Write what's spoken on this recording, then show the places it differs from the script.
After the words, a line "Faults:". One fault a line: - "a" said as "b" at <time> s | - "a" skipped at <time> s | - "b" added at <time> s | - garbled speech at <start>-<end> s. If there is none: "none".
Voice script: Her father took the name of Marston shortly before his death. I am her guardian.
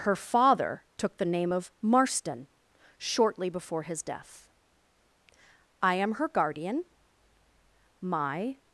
Her father took the name of Marston shortly before his death. I am her guardian. My
Faults:
- "My" added at 8.0 s